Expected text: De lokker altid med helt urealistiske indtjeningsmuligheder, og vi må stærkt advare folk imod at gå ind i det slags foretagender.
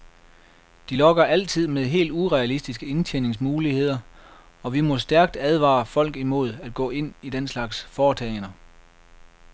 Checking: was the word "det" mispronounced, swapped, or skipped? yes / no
yes